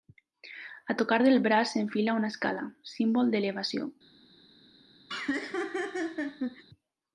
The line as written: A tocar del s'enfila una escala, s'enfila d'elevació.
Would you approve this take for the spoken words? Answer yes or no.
no